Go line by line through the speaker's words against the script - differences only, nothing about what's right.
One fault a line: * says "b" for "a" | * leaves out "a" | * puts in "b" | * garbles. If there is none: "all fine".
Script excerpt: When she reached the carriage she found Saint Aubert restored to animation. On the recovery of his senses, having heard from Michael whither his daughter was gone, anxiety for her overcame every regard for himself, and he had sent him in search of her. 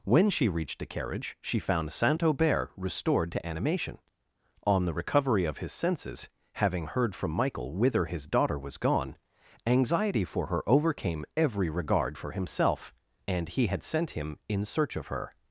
all fine